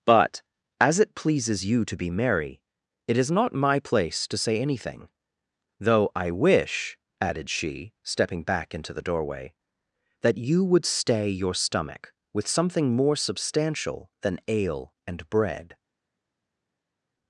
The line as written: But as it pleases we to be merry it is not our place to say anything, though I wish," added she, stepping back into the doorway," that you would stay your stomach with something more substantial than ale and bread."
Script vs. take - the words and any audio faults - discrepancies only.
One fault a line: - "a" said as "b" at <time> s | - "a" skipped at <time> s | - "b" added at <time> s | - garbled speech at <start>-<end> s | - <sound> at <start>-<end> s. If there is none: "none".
- "we" said as "you" at 1.6 s
- "our" said as "my" at 3.5 s